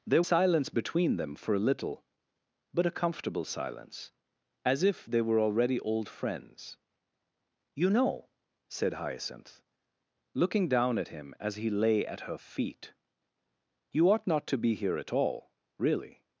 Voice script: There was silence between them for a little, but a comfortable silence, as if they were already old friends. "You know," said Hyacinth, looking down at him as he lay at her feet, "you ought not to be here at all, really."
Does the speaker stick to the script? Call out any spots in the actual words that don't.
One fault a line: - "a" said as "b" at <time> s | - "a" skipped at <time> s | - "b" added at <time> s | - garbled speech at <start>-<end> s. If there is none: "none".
- "was" skipped at 0.2 s